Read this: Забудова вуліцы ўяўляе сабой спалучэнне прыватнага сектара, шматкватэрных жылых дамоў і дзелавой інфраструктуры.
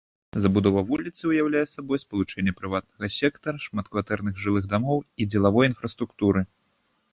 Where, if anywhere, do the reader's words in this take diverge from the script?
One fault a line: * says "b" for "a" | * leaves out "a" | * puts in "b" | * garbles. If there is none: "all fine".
all fine